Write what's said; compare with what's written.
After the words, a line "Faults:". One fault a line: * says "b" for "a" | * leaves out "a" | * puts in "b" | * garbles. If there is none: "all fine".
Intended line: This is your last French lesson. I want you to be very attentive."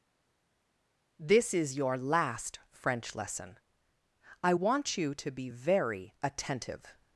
This is your last French lesson. I want you to be very attentive."
Faults:
all fine